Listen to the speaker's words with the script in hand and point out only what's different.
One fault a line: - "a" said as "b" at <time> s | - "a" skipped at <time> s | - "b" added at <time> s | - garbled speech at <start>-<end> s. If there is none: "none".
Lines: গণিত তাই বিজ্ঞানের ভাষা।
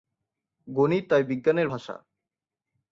none